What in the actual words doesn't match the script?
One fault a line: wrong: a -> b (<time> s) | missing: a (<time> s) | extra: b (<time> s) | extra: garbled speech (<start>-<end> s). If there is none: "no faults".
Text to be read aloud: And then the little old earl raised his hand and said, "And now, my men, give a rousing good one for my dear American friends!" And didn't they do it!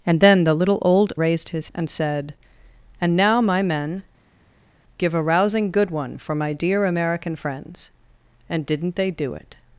missing: earl (1.1 s)
missing: hand (1.7 s)